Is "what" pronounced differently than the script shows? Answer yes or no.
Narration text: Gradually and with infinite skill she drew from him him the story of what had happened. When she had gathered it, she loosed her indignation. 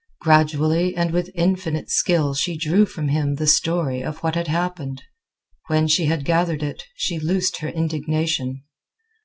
no